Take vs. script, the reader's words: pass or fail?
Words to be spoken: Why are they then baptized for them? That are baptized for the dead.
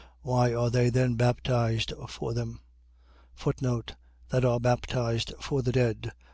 pass